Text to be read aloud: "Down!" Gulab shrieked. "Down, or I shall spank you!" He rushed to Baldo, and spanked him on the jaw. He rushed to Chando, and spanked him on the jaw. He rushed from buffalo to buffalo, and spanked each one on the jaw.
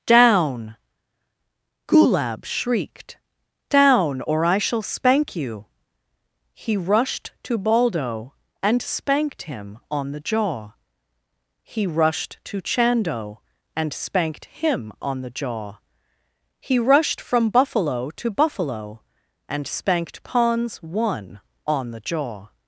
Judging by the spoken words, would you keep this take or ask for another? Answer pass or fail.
fail